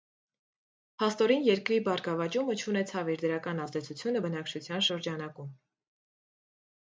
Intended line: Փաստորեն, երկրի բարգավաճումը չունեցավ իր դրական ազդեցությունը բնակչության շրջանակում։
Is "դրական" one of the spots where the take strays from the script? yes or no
no